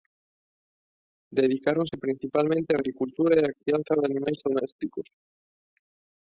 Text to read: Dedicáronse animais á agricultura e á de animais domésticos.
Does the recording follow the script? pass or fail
fail